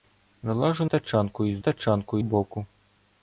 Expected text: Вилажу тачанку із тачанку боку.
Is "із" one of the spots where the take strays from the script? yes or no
no